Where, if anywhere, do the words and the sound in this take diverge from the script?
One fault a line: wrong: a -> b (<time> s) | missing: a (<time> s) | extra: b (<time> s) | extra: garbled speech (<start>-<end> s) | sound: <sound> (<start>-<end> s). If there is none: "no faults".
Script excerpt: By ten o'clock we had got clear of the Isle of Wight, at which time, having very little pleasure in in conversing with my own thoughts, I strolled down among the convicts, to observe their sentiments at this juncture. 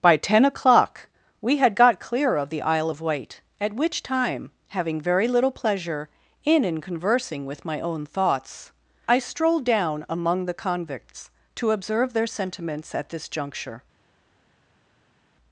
no faults